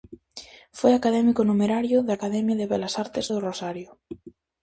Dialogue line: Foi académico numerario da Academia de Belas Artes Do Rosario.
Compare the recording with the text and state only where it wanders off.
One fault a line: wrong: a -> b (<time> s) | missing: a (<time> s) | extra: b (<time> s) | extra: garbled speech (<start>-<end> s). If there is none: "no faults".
no faults